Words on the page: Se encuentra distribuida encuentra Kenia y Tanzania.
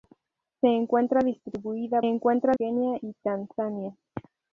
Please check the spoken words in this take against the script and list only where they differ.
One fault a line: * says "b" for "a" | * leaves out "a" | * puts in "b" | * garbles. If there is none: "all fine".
all fine